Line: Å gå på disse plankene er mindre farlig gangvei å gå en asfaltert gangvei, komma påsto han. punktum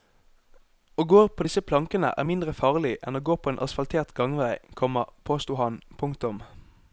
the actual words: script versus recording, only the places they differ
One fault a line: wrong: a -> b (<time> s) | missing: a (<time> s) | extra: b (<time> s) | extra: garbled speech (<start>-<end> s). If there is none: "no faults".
wrong: gangvei -> enn (3.1 s)
extra: på (3.4 s)